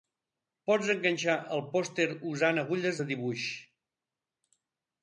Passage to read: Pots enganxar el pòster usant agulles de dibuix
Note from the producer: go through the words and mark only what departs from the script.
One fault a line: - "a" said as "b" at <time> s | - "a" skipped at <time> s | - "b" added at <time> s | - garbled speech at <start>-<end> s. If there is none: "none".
none